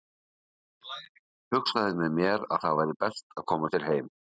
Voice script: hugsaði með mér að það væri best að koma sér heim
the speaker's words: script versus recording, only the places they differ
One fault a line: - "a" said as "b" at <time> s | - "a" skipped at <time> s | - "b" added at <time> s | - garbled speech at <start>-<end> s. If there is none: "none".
none